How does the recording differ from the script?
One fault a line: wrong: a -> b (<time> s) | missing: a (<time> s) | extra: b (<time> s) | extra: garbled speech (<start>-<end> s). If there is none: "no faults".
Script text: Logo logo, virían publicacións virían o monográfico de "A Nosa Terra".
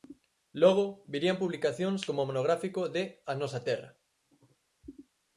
missing: logo (0.8 s)
wrong: virían -> como (2.1 s)